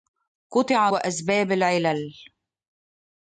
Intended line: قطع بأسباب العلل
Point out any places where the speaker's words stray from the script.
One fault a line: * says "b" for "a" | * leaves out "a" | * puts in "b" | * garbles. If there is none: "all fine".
all fine